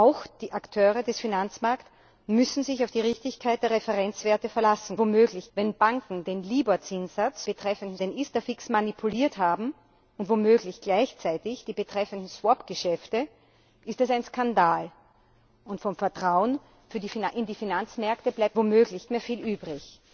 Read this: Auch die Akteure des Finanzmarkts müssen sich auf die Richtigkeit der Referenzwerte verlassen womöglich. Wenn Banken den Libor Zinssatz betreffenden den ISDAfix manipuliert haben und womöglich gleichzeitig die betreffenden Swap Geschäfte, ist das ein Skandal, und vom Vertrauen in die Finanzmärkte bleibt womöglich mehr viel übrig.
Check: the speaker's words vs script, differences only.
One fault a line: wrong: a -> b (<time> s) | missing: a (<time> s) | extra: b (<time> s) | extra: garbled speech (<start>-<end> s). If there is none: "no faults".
no faults